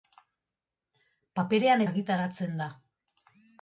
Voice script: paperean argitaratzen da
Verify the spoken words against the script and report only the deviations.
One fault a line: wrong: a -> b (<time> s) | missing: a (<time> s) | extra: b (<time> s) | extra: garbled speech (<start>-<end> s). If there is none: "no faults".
no faults